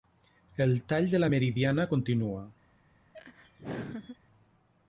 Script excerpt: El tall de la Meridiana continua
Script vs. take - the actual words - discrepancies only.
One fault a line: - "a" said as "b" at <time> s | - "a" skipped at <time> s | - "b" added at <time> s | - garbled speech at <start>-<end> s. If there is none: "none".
none